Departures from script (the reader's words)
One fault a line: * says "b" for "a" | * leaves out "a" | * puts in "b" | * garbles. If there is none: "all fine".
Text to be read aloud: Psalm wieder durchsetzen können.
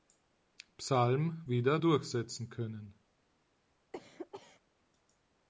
all fine